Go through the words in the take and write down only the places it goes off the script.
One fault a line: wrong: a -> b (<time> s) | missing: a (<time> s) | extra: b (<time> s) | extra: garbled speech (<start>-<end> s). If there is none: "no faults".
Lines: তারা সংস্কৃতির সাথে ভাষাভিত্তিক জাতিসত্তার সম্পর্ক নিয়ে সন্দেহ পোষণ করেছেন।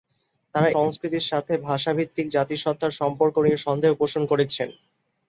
no faults